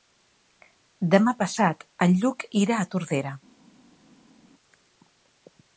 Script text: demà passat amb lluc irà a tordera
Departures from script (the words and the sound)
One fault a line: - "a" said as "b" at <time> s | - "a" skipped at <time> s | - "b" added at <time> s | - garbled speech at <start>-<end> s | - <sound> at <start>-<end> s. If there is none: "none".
- "amb" said as "en" at 2.1 s